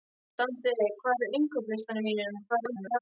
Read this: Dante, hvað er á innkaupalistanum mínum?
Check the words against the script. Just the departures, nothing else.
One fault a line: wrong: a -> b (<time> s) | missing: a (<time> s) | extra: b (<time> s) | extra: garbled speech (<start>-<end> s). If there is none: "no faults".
extra: garbled speech (2.5-3.0 s)